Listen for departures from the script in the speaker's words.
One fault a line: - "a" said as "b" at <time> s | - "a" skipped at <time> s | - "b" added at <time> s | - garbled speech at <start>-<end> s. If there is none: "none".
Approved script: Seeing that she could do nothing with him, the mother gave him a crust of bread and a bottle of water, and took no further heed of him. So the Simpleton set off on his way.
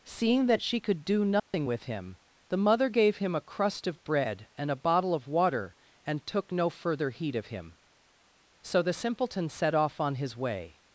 none